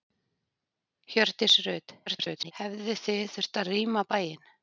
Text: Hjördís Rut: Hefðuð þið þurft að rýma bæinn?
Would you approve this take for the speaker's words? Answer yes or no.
no